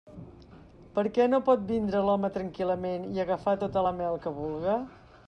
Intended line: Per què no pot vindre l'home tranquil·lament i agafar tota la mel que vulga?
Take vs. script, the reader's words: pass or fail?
pass